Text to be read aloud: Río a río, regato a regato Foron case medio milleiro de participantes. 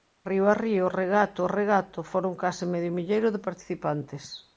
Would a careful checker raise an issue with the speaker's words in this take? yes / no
no